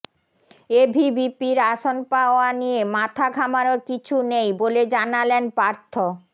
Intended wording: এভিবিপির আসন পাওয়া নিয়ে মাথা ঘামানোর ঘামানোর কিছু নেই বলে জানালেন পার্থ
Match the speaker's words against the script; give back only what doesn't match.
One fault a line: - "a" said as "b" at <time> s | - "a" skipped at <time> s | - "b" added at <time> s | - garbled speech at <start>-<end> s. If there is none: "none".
- "ঘামানোর" skipped at 3.8 s